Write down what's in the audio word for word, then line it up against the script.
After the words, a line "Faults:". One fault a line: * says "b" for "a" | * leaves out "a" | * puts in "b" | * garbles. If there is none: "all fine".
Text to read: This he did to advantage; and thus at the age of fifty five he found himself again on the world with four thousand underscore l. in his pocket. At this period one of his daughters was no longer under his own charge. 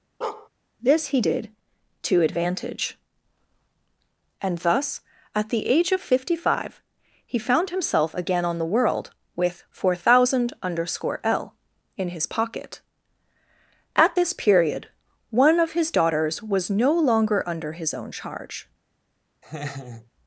This he did to advantage; and thus at the age of fifty five he found himself again on the world with four thousand underscore l. in his pocket. At this period one of his daughters was no longer under his own charge.
Faults:
all fine